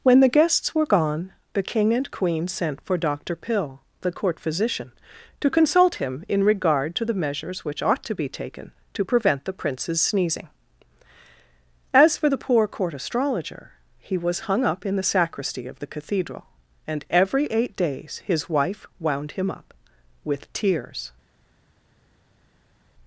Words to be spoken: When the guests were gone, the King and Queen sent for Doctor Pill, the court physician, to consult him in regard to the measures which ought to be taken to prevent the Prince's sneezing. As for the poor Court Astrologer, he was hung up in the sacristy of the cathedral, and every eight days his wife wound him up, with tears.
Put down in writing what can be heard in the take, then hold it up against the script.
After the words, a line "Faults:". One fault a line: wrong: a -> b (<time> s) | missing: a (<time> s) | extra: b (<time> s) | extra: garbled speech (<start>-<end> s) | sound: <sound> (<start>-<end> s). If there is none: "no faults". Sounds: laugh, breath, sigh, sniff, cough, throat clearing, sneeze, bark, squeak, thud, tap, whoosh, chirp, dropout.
When the guests were gone, the King and Queen sent for Doctor Pill, the court physician, to consult him in regard to the measures which ought to be taken to prevent the Prince's sneezing. As for the poor Court Astrologer, he was hung up in the sacristy of the cathedral, and every eight days his wife wound him up, with tears.
Faults:
no faults